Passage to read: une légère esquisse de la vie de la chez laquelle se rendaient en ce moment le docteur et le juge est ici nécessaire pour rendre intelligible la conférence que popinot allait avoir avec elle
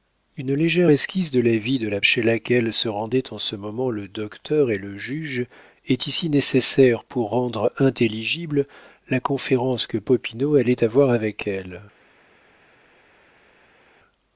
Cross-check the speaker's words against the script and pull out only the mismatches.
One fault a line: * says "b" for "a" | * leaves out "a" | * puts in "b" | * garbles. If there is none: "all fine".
all fine